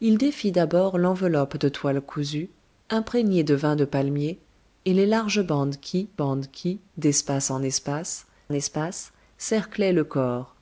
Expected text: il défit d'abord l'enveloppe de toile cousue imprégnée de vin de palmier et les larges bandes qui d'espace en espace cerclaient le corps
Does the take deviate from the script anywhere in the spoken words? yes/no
yes